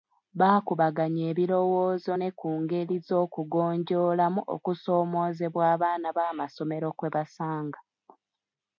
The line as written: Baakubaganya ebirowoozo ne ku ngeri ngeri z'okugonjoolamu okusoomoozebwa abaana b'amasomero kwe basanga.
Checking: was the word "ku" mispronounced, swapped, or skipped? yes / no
no